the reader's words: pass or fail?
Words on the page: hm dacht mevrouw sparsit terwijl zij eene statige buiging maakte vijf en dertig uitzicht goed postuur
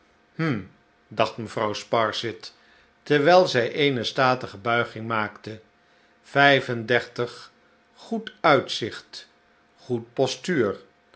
fail